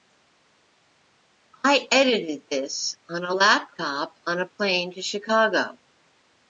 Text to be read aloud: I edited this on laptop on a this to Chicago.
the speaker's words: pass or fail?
fail